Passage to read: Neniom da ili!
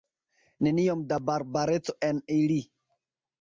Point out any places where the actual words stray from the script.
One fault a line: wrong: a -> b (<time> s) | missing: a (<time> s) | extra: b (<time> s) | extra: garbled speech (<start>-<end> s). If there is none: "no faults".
extra: barbareco en (1.3 s)